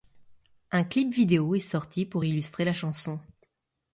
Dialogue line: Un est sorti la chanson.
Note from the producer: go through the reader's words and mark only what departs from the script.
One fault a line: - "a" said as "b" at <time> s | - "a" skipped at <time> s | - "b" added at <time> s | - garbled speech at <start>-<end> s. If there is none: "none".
- "clip vidéo" added at 0.8 s
- "pour illustrer" added at 2.1 s